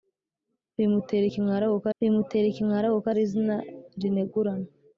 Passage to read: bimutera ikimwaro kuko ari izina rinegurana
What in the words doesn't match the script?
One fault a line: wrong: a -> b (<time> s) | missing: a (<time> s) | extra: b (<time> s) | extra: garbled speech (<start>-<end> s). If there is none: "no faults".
extra: bimutera ikimwaro kuko (2.0 s)